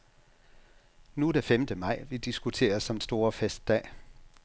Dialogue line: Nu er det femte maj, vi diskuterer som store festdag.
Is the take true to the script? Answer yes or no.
yes